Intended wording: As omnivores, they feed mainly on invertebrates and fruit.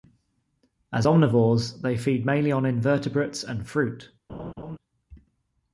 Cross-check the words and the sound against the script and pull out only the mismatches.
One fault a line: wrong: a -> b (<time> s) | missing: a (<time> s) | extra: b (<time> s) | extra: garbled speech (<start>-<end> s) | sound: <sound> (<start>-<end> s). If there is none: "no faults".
sound: laugh (4.3-4.8 s)